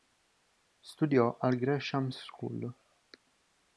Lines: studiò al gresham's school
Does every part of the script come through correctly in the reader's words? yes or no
yes